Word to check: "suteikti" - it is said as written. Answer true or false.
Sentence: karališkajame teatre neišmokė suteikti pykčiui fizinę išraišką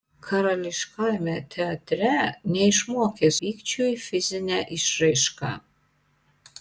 false